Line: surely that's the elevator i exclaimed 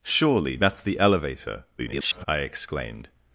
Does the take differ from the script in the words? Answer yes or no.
yes